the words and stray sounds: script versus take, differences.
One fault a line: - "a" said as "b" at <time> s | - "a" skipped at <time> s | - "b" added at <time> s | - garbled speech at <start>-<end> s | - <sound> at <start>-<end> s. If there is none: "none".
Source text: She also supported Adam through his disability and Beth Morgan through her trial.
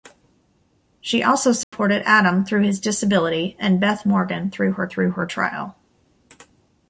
- dropout at 1.6-1.7 s
- "through her" added at 4.9 s